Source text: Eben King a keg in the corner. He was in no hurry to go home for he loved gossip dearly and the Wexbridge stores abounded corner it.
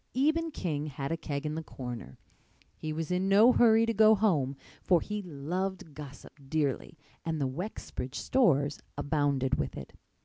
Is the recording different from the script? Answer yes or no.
yes